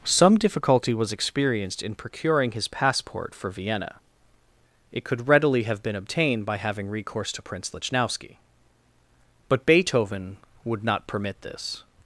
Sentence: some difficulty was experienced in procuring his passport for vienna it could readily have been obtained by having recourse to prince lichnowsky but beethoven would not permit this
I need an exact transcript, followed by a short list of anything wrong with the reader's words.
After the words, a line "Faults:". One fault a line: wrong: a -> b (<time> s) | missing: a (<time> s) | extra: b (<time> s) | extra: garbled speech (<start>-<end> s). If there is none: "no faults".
some difficulty was experienced in procuring his passport for vienna it could readily have been obtained by having recourse to prince lichnowsky but beethoven would not permit this
Faults:
no faults